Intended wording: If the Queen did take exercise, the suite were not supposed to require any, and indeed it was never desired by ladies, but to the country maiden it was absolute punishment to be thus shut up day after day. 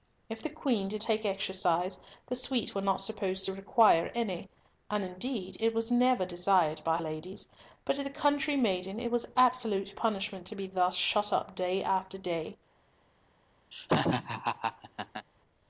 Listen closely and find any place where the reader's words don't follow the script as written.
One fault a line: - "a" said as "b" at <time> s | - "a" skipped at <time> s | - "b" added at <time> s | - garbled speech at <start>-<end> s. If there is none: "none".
none